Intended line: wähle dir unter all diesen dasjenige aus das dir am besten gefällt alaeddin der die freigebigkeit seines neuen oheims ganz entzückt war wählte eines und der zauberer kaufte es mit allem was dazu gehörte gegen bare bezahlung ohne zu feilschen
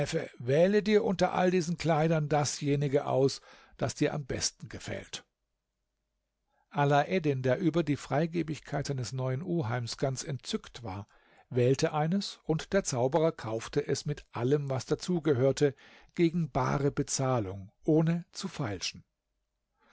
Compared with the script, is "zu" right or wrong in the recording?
right